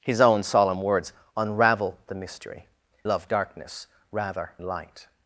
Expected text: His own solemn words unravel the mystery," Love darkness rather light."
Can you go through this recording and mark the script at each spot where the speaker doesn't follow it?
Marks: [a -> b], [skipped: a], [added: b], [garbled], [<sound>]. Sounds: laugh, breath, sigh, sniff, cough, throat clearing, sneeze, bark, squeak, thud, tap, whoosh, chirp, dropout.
His own solemn words unravel the mystery," Love darkness rather light."